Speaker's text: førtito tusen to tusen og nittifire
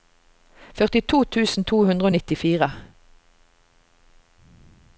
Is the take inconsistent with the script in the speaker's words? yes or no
yes